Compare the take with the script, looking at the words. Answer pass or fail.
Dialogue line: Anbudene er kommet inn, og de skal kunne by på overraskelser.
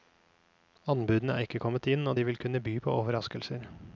fail